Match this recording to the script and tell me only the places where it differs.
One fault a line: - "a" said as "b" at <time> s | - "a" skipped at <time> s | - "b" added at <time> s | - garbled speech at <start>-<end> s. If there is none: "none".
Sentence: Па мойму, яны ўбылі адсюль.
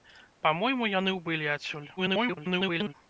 - garbled speech at 2.0-2.9 s